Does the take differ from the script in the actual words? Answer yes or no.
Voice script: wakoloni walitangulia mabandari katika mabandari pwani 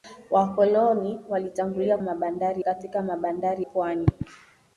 no